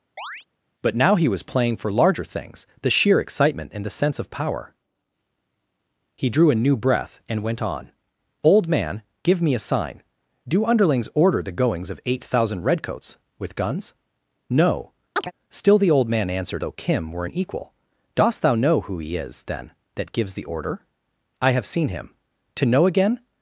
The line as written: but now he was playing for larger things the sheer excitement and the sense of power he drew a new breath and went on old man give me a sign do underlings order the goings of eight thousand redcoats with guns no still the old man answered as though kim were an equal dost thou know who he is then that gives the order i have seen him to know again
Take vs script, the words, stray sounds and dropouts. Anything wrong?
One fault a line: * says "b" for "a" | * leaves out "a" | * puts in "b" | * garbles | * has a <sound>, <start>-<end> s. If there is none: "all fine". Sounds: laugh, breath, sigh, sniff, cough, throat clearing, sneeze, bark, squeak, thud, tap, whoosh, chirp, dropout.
* has a chirp, 0.2-0.5 s
* has a chirp, 15.2-15.3 s
* leaves out "as"